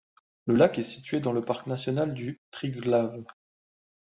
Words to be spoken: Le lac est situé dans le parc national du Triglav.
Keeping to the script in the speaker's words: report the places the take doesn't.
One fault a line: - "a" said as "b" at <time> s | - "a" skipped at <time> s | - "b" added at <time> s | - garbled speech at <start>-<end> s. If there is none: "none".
none